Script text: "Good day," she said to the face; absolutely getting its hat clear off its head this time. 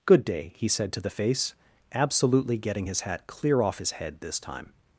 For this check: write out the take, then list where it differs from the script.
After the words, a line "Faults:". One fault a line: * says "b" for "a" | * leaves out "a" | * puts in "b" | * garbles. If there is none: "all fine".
"Good day," he said to the face; absolutely getting his hat clear off his head this time.
Faults:
* says "he" for "she"
* says "his" for "its"
* says "his" for "its"